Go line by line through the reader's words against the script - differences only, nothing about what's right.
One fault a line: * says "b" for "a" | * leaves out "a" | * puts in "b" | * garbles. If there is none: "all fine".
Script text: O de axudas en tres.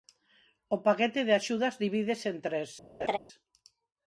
* puts in "paquete"
* puts in "divídese"